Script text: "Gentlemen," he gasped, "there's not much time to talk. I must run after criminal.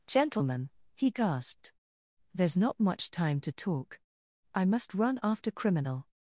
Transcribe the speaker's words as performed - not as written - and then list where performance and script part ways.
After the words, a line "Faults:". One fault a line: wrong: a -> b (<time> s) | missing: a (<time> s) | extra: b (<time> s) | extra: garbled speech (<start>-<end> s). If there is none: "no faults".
"Gentlemen," he gasped, "there's not much time to talk. I must run after criminal.
Faults:
no faults